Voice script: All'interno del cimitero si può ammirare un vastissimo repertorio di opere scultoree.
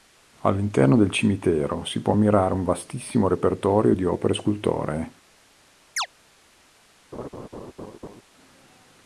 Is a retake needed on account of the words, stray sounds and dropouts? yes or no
yes